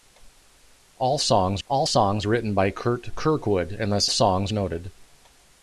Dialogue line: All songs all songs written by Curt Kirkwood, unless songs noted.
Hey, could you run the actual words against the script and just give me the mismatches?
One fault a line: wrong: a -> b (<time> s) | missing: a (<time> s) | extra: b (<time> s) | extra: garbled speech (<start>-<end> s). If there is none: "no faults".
no faults